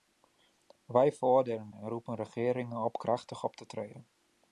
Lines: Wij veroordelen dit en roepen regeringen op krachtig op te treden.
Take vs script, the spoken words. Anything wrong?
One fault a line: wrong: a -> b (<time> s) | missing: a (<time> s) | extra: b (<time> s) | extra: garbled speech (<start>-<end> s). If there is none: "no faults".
missing: dit (1.7 s)